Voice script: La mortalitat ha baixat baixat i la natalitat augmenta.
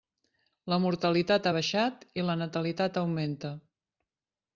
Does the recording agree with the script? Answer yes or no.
no